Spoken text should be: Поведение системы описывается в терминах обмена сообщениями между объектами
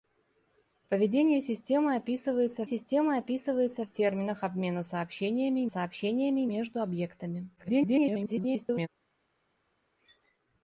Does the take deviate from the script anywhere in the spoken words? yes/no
yes